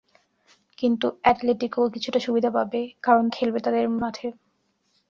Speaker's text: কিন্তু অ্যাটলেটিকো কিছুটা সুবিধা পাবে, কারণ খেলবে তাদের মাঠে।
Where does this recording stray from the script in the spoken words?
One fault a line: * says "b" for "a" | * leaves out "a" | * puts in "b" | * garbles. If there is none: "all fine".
all fine